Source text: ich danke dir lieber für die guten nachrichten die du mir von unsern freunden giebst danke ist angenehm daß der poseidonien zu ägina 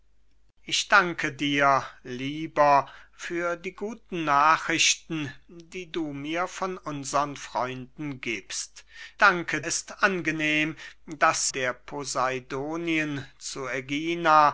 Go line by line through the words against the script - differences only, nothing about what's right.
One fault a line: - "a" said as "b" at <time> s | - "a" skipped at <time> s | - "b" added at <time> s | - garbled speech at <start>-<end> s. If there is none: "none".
none